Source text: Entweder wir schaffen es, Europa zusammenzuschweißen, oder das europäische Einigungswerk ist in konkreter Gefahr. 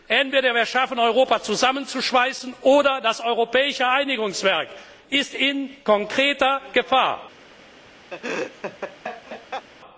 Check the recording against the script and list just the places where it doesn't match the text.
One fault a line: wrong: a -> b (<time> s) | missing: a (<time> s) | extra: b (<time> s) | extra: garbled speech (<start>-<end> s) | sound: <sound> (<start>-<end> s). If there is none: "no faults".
sound: laugh (8.1-9.7 s)